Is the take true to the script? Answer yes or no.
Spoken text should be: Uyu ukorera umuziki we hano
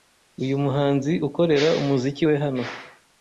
no